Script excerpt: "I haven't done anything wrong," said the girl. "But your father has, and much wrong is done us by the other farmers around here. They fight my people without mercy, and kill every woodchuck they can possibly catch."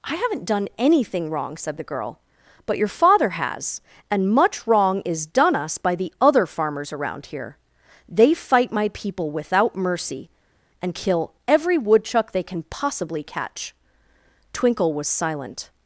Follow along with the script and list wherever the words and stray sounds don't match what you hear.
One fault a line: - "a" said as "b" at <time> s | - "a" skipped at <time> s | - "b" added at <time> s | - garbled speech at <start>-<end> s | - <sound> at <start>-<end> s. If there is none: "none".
- "Twinkle was silent" added at 14.5 s